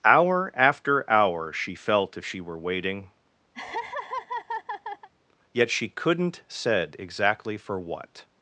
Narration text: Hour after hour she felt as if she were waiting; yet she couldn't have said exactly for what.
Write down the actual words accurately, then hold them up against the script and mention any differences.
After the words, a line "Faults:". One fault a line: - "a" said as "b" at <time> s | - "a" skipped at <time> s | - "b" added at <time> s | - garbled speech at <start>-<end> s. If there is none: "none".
Hour after hour she felt if she were waiting; yet she couldn't said exactly for what.
Faults:
- "as" skipped at 2.2 s
- "have" skipped at 6.4 s